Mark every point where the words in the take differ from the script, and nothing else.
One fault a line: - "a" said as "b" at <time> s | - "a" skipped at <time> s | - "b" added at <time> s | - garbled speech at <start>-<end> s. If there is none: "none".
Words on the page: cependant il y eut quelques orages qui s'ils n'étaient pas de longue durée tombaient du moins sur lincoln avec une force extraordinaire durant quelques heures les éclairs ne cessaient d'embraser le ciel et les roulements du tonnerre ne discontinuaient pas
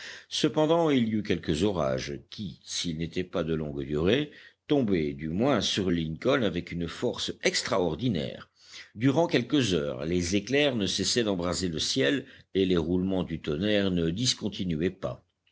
none